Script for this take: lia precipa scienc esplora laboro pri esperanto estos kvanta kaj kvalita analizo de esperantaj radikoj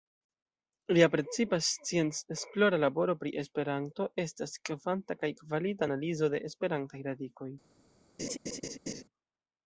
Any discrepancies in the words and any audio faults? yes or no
yes